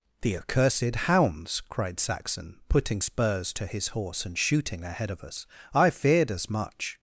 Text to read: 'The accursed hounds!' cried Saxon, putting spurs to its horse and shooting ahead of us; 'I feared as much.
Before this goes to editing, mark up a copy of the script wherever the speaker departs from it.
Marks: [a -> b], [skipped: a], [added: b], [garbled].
'The accursed hounds!' cried Saxon, putting spurs to [its -> his] horse and shooting ahead of us; 'I feared as much.